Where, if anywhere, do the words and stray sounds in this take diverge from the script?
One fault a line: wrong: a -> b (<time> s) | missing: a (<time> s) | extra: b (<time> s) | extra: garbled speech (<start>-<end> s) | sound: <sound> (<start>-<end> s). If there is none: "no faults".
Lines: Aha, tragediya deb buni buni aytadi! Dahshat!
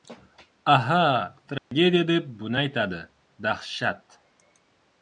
sound: dropout (1.6-1.7 s)
missing: buni (2.6 s)